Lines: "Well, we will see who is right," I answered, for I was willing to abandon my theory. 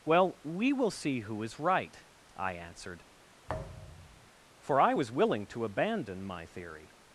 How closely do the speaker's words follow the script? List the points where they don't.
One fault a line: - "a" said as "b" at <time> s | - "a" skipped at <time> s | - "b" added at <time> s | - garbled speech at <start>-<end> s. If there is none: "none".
none